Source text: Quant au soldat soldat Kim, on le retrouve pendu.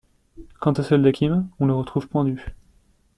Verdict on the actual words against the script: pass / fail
fail